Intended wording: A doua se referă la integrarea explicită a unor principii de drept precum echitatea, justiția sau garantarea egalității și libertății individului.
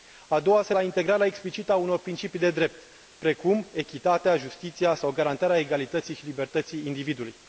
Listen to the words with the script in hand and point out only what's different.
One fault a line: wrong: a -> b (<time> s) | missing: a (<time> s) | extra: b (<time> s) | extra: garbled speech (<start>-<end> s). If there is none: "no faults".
missing: referă (0.7 s)